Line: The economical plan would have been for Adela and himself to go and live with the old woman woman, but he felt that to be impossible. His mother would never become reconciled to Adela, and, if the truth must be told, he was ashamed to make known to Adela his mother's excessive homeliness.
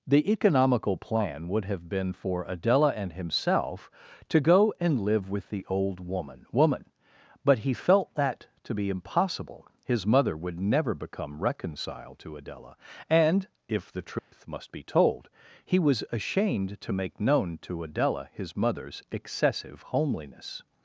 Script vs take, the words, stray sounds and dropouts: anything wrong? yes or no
yes